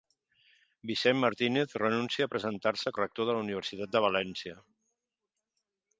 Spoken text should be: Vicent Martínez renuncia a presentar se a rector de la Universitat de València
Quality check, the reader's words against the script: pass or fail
pass